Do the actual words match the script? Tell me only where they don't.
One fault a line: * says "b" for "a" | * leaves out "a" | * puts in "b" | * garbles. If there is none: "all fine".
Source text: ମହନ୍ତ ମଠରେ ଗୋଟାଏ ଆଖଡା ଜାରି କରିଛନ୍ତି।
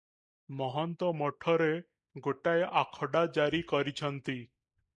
all fine